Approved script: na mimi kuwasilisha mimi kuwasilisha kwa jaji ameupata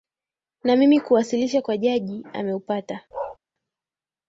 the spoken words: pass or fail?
fail